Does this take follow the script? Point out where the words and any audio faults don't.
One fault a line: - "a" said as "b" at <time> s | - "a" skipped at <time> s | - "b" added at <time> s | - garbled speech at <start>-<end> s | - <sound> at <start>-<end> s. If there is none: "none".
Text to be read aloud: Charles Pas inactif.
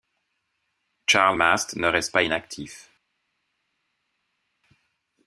- "Mast ne reste" added at 1.3 s